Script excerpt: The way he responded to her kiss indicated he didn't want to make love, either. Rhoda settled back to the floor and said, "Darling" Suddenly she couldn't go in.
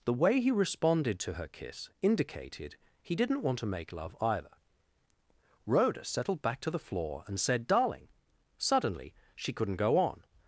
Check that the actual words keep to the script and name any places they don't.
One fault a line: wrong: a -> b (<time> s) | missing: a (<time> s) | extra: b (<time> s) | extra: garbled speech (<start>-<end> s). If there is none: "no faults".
wrong: in -> on (10.0 s)